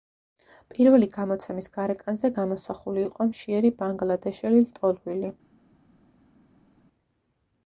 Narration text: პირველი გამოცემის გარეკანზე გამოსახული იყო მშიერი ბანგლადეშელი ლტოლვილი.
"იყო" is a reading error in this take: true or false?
false